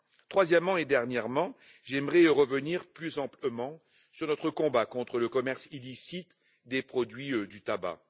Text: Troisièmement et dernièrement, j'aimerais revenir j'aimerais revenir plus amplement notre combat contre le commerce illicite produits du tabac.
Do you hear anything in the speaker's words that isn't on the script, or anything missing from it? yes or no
yes